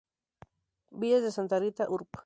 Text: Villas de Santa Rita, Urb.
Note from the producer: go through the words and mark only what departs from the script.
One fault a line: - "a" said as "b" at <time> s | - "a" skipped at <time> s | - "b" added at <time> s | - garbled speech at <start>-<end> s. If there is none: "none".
none